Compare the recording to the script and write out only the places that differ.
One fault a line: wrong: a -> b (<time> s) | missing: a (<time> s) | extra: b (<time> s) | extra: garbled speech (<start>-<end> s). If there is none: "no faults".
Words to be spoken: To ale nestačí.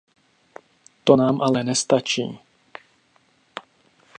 extra: nám (1.2 s)